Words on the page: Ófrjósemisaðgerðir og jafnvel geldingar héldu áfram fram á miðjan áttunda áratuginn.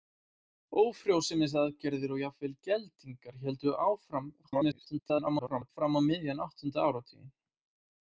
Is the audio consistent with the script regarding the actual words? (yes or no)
no